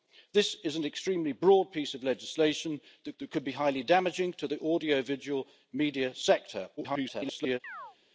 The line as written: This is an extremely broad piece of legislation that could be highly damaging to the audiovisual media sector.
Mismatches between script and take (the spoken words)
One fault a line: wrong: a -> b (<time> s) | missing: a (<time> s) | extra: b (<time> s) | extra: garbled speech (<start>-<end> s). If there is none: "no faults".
extra: that (3.2 s)
extra: garbled speech (6.8-7.6 s)